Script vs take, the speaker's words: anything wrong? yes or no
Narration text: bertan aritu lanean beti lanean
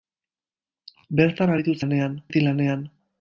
no